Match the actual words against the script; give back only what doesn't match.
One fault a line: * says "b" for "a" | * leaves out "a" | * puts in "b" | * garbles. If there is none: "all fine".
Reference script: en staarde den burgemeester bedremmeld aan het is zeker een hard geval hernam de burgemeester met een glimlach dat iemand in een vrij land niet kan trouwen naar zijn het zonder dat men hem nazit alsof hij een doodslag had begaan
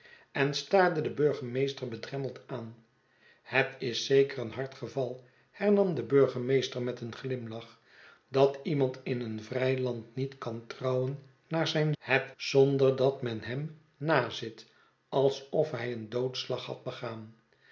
all fine